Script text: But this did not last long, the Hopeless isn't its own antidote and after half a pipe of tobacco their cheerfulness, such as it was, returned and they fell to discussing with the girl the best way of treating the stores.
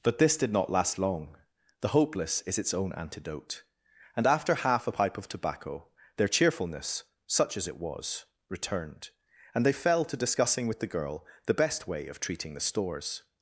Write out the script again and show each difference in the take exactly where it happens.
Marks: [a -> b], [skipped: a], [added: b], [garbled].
But this did not last long, the Hopeless [isn't -> is] its own antidote and after half a pipe of tobacco their cheerfulness, such as it was, returned and they fell to discussing with the girl the best way of treating the stores.